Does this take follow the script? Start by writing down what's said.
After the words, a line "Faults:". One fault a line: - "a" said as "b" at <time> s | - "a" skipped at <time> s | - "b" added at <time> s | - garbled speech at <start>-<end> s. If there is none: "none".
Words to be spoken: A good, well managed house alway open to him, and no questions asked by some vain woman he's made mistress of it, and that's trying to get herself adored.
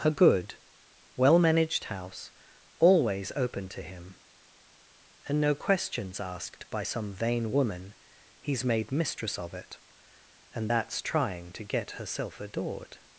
A good, well managed house always open to him, and no questions asked by some vain woman he's made mistress of it, and that's trying to get herself adored.
Faults:
- "alway" said as "always" at 2.8 s